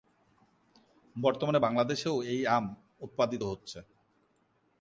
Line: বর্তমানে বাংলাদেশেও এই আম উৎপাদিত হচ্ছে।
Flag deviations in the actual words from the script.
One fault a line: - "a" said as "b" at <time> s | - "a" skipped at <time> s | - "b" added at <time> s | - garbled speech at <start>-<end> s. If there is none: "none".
none